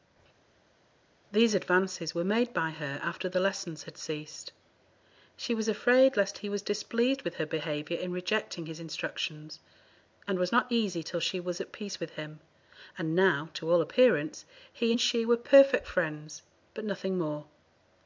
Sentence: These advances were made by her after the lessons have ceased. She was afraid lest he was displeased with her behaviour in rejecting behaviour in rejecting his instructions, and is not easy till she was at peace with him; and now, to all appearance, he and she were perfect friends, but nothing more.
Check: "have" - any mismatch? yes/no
yes